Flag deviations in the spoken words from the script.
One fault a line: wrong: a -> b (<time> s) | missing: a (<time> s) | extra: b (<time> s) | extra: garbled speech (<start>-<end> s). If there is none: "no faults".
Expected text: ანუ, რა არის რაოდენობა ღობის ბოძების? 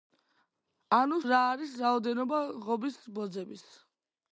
no faults